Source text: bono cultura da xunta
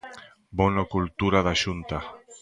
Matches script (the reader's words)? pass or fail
pass